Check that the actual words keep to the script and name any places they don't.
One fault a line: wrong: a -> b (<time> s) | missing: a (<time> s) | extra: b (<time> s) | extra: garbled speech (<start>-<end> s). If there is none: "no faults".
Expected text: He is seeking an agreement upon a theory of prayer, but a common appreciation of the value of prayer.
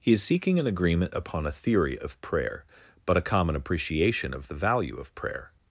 no faults